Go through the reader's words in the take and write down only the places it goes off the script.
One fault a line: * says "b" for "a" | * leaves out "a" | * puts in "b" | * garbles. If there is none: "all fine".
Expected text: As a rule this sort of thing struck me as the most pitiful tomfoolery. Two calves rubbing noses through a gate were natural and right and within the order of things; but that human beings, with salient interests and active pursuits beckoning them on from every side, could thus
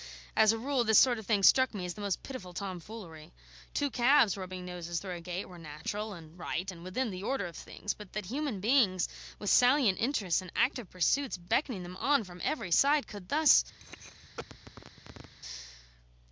all fine